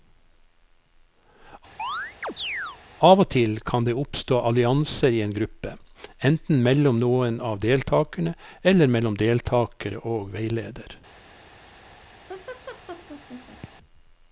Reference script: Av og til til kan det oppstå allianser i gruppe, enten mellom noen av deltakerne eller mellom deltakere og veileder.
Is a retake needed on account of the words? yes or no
yes